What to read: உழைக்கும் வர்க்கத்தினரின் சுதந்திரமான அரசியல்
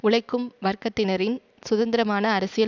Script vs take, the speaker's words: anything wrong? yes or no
no